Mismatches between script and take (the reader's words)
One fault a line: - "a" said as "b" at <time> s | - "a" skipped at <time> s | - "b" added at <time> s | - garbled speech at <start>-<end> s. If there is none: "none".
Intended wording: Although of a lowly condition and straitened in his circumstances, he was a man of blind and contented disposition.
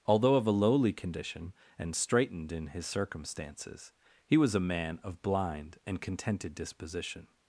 none